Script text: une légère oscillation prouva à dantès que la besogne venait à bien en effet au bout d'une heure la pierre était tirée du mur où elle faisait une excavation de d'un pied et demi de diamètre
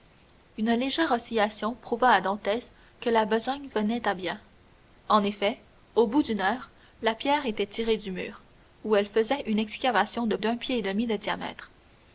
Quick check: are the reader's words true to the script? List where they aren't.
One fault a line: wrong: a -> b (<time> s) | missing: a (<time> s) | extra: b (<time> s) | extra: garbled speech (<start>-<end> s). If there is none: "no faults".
no faults